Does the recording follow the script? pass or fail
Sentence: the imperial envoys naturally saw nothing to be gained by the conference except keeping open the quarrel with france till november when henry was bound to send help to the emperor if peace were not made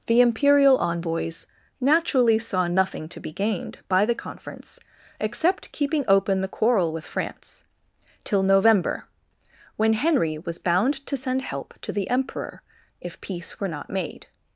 pass